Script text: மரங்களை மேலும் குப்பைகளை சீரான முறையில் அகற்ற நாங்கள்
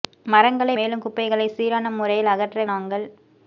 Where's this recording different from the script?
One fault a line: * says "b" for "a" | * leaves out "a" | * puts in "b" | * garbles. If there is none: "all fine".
all fine